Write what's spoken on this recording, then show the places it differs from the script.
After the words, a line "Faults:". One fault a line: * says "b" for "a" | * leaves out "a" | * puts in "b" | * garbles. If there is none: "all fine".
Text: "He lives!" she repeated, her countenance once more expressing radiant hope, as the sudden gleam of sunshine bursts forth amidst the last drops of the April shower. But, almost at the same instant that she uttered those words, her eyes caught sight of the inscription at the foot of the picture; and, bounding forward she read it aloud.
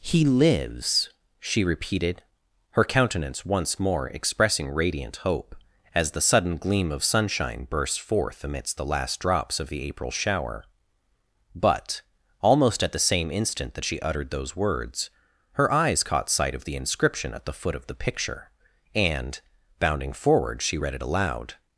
"He lives!" she repeated, her countenance once more expressing radiant hope, as the sudden gleam of sunshine burst forth amidst the last drops of the April shower. But, almost at the same instant that she uttered those words, her eyes caught sight of the inscription at the foot of the picture; and, bounding forward she read it aloud.
Faults:
* says "burst" for "bursts"